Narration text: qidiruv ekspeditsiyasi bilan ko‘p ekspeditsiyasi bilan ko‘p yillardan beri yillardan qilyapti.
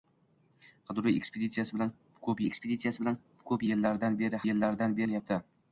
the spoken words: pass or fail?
pass